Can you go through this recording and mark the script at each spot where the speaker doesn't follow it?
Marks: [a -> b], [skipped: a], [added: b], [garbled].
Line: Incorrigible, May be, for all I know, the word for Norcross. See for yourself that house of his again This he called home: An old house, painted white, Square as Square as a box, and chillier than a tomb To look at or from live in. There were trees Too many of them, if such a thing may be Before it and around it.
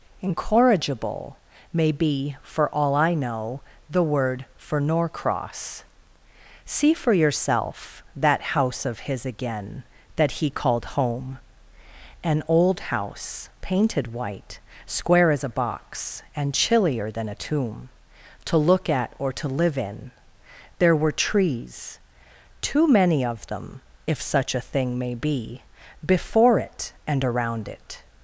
Incorrigible, May be, for all I know, the word for Norcross. See for yourself that house of his again [This -> That] he called home: An old house, painted white, Square as [skipped: Square as] a box, and chillier than a tomb To look at or [from -> to] live in. There were trees Too many of them, if such a thing may be Before it and around it.